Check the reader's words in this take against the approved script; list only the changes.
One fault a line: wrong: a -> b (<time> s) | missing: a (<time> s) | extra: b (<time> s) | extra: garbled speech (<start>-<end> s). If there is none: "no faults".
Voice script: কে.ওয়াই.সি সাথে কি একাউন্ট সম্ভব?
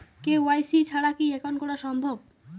wrong: সাথে -> ছাড়া (0.8 s)
extra: করা (1.6 s)